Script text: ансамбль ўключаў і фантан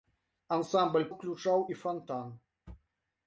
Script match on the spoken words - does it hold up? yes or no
yes